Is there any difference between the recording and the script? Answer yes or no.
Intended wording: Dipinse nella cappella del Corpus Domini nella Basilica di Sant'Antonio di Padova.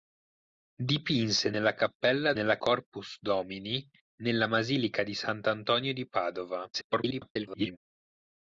yes